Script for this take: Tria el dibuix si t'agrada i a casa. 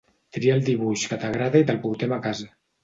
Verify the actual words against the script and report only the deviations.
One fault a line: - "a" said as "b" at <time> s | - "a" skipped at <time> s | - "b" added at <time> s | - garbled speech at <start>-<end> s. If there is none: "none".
- "si" said as "que" at 1.1 s
- "te'l portem" added at 1.7 s